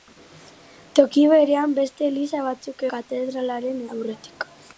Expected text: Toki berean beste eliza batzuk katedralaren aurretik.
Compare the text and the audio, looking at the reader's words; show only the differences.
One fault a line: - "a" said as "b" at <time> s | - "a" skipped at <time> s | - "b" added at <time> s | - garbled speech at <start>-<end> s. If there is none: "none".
none